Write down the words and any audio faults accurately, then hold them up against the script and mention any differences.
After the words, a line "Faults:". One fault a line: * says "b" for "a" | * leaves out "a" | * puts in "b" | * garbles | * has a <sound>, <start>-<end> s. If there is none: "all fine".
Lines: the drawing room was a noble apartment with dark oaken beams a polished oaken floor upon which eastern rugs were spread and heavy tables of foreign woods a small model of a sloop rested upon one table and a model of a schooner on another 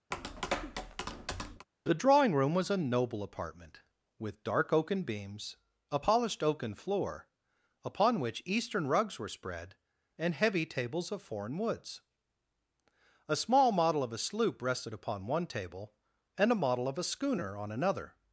the drawing room was a noble apartment with dark oaken beams a polished oaken floor upon which eastern rugs were spread and heavy tables of foreign woods a small model of a sloop rested upon one table and a model of a schooner on another
Faults:
* has a tap, 0.1-1.7 s